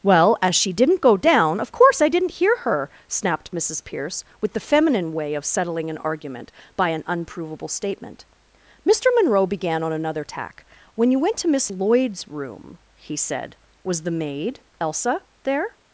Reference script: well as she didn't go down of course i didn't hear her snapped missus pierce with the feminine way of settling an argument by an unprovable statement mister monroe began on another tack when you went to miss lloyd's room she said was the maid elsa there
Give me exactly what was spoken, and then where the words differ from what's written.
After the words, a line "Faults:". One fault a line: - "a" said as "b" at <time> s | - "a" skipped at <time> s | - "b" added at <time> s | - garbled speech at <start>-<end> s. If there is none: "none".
well as she didn't go down of course i didn't hear her snapped missus pierce with the feminine way of settling an argument by an unprovable statement mister monroe began on another tack when you went to miss lloyd's room he said was the maid elsa there
Faults:
- "she" said as "he" at 13.0 s